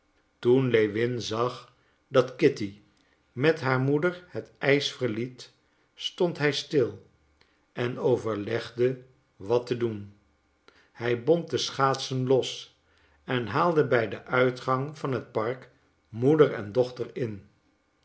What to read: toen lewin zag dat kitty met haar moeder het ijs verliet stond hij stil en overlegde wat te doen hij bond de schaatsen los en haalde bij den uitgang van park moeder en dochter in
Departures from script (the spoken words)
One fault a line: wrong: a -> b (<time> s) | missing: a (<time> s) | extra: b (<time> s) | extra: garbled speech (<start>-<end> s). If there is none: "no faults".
extra: het (15.1 s)